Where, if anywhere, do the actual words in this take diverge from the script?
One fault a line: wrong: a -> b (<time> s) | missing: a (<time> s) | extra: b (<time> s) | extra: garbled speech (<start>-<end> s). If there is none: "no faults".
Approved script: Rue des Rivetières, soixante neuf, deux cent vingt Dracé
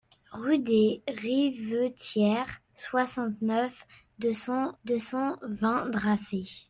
extra: deux cent (4.8 s)